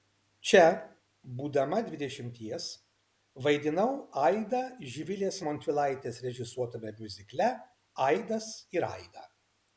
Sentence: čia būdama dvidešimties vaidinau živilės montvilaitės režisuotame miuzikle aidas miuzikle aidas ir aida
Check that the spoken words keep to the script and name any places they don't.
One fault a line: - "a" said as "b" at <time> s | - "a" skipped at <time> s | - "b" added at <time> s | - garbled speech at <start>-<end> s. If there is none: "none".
- "aidą" added at 4.3 s
- "miuzikle aidas" skipped at 8.5 s